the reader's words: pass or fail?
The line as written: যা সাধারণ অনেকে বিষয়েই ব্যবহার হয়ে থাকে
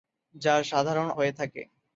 fail